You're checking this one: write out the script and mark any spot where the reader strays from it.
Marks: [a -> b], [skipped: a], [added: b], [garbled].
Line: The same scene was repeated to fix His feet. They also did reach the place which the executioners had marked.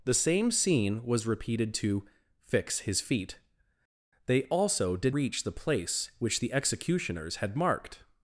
The same scene was repeated to fix His feet. They also did reach the place which the executioners had marked.